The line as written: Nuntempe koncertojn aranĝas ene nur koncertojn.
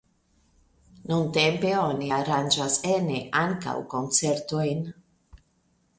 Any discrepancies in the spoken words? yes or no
yes